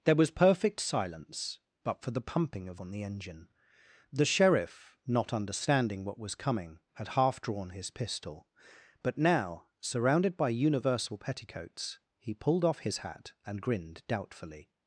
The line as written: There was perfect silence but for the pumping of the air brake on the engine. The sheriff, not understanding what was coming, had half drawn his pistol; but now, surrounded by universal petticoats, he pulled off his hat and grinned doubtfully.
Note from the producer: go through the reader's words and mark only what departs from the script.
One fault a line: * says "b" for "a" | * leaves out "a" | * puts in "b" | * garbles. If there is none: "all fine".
* leaves out "the air brake"